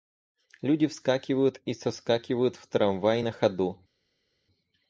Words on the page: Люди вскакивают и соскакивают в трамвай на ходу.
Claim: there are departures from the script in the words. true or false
false